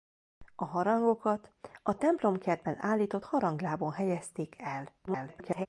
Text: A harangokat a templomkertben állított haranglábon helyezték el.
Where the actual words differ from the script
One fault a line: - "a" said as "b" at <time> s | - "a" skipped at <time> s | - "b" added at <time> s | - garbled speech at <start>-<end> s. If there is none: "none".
- garbled speech at 5.1-5.7 s